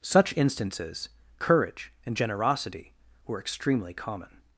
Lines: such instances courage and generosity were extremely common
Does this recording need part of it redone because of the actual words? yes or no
no